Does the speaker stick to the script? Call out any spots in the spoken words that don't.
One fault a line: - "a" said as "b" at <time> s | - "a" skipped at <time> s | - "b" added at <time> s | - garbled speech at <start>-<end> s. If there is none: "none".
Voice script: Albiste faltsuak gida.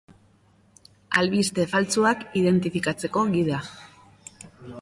- "identifikatzeko" added at 2.4 s